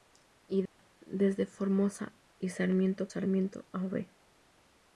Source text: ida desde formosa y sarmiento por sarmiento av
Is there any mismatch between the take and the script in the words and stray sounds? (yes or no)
yes